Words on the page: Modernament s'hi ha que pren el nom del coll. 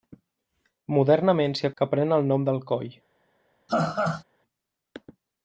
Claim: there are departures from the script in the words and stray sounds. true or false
true